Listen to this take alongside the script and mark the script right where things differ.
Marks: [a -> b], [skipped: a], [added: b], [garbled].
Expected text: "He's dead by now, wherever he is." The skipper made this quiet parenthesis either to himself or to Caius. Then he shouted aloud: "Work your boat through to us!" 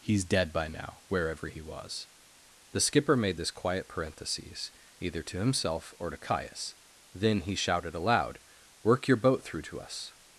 "He's dead by now, wherever he [is." -> was] The skipper made this quiet parenthesis either to himself or to Caius. Then he shouted aloud: "Work your boat through to us!"